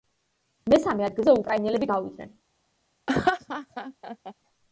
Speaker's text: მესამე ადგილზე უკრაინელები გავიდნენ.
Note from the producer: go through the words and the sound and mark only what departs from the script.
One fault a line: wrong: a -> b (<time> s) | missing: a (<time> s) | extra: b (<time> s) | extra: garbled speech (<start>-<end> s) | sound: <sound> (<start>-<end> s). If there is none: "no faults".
sound: laugh (3.1-4.3 s)